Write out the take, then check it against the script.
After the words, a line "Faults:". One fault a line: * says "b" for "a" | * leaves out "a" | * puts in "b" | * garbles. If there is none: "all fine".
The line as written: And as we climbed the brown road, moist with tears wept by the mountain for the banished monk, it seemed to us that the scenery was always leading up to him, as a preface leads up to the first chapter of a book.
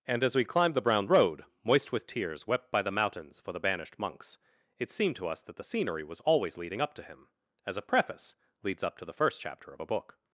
And as we climbed the brown road, moist with tears wept by the mountains for the banished monks, it seemed to us that the scenery was always leading up to him, as a preface leads up to the first chapter of a book.
Faults:
* says "mountains" for "mountain"
* says "monks" for "monk"